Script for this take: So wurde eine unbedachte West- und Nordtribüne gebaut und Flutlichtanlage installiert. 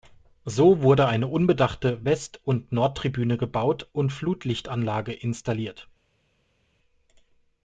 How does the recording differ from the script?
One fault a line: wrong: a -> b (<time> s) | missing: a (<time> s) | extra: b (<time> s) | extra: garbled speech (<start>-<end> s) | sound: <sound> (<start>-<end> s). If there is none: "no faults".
no faults